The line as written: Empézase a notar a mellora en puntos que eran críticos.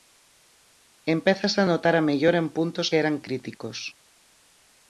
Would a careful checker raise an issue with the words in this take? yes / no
no